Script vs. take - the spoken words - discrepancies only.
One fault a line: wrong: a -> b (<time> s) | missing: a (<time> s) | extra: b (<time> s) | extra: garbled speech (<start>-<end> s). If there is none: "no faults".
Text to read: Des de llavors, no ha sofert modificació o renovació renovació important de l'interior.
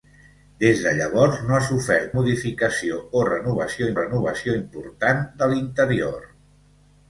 no faults